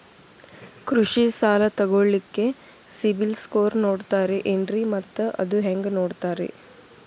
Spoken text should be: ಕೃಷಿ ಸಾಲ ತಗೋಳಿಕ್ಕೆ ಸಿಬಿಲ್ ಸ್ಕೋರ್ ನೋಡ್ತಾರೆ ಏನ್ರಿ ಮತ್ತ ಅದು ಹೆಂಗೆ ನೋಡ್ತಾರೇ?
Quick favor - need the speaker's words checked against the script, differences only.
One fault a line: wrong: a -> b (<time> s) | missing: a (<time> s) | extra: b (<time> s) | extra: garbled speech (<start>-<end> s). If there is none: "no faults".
no faults